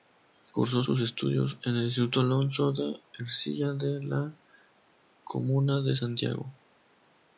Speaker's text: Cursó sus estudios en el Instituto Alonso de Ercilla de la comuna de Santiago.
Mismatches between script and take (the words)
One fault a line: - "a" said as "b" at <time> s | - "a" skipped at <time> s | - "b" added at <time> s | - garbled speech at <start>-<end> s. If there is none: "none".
none